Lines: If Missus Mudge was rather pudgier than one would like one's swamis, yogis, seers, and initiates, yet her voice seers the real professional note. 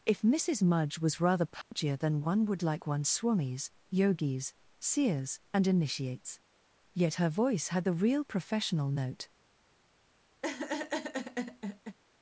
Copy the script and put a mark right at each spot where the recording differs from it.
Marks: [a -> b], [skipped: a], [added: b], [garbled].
If Missus Mudge was rather pudgier than one would like one's swamis, yogis, seers, and initiates, yet her voice [seers -> had] the real professional note.